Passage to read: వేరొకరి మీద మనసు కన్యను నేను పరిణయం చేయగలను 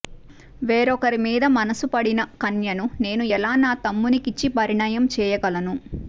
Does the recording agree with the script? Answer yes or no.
no